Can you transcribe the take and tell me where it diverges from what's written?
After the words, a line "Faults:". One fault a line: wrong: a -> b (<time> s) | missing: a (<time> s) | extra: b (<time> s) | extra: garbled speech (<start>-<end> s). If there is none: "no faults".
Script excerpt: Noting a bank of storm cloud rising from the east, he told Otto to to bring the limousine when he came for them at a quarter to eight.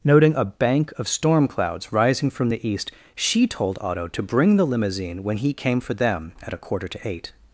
Noting a bank of storm clouds rising from the east, she told Otto to bring the limousine when he came for them at a quarter to eight.
Faults:
wrong: cloud -> clouds (1.5 s)
wrong: he -> she (3.1 s)
missing: to (4.2 s)